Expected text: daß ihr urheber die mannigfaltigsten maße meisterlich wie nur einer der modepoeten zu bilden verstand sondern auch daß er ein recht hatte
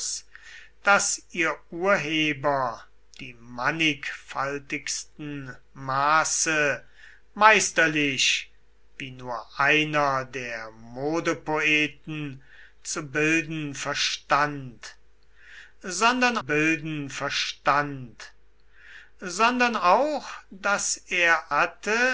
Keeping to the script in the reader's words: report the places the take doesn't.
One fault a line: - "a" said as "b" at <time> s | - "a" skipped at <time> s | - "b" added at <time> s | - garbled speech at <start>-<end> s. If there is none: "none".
- "bilden verstand sondern" added at 16.4 s
- "ein recht" skipped at 21.5 s